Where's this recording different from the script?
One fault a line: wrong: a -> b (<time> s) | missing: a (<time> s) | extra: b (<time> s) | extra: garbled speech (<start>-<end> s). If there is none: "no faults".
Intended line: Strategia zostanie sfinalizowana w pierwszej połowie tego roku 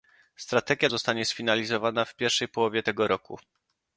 no faults